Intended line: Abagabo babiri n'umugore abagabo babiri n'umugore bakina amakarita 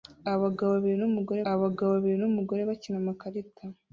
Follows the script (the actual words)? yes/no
yes